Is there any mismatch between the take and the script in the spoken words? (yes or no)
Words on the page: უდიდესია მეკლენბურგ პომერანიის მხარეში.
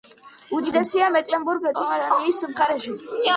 no